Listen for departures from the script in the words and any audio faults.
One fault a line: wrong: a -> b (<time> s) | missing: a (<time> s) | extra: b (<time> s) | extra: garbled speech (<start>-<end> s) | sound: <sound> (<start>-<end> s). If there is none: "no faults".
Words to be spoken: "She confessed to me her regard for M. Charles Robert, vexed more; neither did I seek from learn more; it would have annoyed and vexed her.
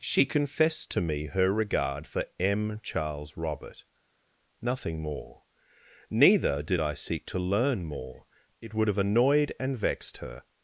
wrong: vexed -> nothing (4.6 s)
wrong: from -> to (7.3 s)